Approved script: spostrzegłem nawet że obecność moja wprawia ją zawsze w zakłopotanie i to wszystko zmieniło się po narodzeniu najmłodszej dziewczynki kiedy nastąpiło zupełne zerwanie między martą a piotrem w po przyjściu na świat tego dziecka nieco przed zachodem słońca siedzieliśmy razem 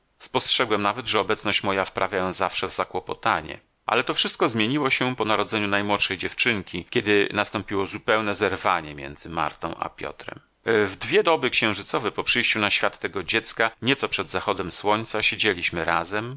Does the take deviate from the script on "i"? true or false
true